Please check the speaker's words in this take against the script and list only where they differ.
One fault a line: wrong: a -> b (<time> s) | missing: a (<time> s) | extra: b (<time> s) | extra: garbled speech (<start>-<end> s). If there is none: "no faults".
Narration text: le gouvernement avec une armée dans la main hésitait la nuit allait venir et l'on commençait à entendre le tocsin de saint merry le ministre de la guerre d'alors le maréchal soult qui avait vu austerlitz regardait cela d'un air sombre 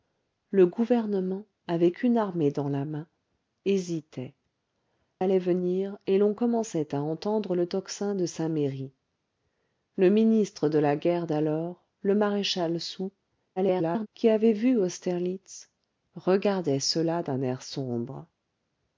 missing: la nuit (4.3 s)
extra: garbled speech (13.6-14.1 s)